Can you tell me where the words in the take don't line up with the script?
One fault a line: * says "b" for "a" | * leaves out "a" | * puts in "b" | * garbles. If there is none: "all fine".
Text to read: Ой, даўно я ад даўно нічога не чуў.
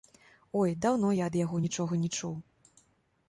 * says "яго" for "даўно"